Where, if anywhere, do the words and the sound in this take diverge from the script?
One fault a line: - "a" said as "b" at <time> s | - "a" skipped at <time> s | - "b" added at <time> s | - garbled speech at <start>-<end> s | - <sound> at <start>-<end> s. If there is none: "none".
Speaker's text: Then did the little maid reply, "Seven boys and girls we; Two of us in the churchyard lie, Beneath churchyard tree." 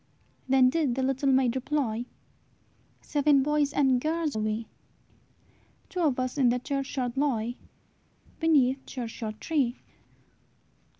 none